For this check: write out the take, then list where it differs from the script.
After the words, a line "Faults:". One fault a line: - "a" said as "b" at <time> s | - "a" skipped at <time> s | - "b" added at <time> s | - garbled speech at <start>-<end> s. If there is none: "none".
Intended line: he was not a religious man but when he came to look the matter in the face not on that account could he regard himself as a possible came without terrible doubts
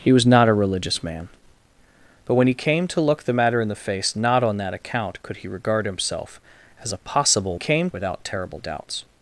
he was not a religious man but when he came to look the matter in the face not on that account could he regard himself as a possible came without terrible doubts
Faults:
none